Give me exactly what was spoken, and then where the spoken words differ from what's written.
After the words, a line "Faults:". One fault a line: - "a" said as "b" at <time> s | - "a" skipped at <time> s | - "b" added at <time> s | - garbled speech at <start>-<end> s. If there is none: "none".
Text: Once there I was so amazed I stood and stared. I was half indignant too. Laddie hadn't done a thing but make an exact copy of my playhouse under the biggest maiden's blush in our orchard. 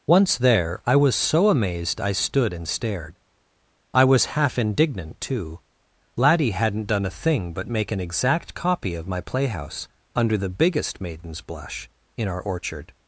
Once there I was so amazed I stood and stared. I was half indignant too. Laddie hadn't done a thing but make an exact copy of my playhouse under the biggest maiden's blush in our orchard.
Faults:
none